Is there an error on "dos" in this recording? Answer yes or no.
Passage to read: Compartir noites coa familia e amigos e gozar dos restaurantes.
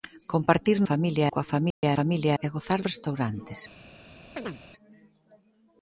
yes